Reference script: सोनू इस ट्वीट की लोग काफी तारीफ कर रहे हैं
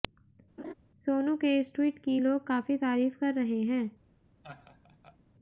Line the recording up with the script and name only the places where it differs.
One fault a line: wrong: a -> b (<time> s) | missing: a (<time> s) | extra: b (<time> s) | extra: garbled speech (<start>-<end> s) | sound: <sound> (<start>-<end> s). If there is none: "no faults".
sound: laugh (0.6-0.7 s)
extra: के (1.4 s)
sound: laugh (4.4-5.2 s)